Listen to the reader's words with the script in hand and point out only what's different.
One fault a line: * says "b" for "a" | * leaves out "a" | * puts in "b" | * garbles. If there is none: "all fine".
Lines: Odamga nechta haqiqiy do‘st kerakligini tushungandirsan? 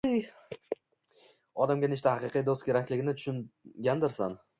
all fine